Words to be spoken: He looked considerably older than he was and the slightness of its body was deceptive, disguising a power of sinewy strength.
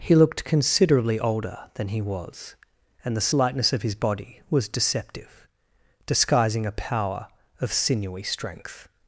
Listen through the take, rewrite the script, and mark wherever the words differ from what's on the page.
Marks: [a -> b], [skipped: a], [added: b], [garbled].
He looked considerably older than he was and the slightness of [its -> his] body was deceptive, disguising a power of sinewy strength.